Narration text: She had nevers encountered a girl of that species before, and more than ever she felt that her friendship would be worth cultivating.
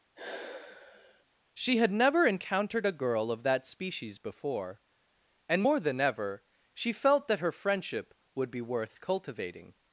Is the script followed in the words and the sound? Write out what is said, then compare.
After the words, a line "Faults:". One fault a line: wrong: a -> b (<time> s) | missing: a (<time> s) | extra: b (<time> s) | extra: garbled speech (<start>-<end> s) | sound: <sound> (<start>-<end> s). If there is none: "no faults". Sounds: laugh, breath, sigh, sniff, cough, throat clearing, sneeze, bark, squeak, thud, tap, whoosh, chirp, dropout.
She had never encountered a girl of that species before, and more than ever she felt that her friendship would be worth cultivating.
Faults:
sound: sigh (0.2-1.2 s)
wrong: nevers -> never (1.9 s)